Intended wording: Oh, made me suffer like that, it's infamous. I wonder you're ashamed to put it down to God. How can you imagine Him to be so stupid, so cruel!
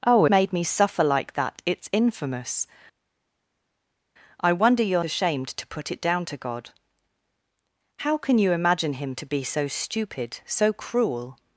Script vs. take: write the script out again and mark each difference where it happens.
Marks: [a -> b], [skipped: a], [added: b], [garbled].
Oh, made me suffer like that, it's infamous. I wonder you're ashamed to put it down to God. How can you imagine Him to be so stupid, so cruel!